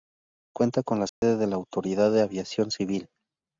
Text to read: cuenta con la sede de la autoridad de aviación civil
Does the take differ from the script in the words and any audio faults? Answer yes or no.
yes